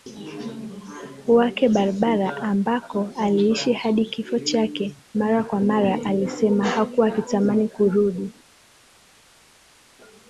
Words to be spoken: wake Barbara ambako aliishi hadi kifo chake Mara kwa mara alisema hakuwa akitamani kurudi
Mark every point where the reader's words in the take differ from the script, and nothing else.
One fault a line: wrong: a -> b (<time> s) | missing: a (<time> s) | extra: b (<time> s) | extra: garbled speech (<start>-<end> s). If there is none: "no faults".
no faults